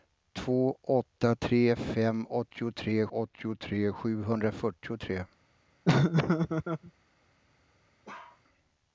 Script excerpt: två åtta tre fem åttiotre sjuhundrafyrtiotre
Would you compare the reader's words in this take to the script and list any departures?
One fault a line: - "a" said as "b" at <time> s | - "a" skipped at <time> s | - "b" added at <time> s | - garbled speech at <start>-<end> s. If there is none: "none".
- "åttiotre" added at 3.1 s